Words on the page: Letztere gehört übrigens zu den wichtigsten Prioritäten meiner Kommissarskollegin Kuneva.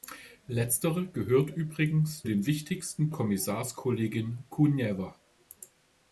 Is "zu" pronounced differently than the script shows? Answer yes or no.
yes